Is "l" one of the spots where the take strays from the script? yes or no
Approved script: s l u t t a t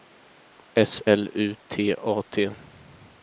no